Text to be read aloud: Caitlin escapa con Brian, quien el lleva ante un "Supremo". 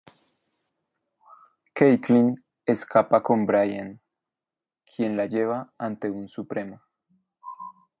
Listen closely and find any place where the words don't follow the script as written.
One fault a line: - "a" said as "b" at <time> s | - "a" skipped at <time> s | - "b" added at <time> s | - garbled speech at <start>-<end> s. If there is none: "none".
- "el" said as "la" at 5.2 s